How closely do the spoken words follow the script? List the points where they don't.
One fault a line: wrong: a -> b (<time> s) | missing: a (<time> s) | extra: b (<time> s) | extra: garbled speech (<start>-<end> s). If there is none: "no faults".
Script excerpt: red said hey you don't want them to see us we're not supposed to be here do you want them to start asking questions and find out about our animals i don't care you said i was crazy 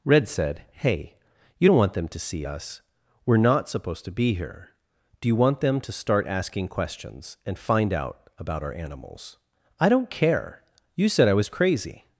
no faults